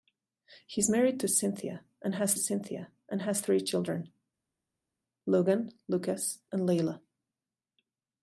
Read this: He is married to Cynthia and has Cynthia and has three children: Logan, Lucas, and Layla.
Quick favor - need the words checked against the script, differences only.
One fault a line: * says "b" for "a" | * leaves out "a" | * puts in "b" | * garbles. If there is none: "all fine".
all fine